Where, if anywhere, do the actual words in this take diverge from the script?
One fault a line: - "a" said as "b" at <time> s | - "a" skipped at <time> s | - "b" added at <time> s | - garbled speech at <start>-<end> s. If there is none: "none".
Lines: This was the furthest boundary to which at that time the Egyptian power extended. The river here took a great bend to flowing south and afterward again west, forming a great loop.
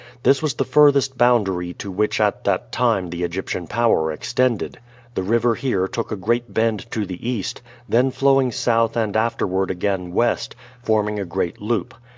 - "the east then" added at 7.0 s